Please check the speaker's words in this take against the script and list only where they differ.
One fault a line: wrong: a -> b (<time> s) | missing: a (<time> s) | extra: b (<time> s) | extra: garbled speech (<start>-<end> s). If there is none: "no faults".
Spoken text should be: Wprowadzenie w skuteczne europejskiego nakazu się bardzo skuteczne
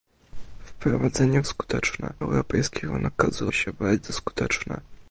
no faults